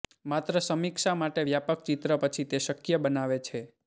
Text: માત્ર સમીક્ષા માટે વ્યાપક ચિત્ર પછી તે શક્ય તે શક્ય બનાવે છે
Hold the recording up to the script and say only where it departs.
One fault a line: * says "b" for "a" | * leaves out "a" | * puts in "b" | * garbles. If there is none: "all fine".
* leaves out "તે શક્ય"